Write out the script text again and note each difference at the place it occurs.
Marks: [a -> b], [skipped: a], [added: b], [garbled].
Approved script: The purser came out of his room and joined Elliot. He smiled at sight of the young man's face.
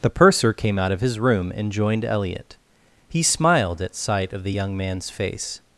The purser came out of his room and joined Elliot. He smiled at sight of the young man's face.